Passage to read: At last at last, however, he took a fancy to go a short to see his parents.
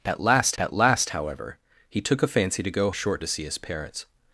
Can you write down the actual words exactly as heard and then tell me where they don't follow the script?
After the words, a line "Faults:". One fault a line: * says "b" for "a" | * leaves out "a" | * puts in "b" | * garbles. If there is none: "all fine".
At last at last, however, he took a fancy to go a short to see his parents.
Faults:
all fine